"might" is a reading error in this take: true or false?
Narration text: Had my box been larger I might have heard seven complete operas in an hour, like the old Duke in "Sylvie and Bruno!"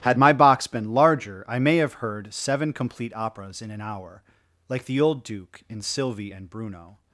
true